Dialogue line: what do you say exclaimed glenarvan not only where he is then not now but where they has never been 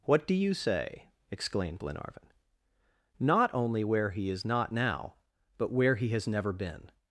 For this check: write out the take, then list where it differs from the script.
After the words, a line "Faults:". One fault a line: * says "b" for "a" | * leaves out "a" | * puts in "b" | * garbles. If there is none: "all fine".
what do you say exclaimed glenarvan not only where he is not now but where he has never been
Faults:
* leaves out "then"
* says "he" for "they"